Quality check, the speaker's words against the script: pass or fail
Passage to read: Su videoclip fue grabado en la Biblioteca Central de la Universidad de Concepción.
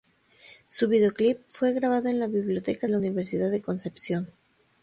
fail